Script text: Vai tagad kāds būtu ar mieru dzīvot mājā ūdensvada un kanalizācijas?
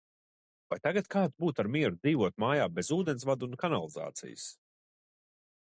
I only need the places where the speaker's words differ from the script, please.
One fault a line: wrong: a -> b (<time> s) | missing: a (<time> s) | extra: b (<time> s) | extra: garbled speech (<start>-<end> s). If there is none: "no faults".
extra: bez (2.8 s)